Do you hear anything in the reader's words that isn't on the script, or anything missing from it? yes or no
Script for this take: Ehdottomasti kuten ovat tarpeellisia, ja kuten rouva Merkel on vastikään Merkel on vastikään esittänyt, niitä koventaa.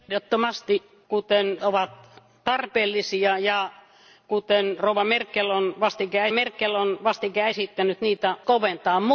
no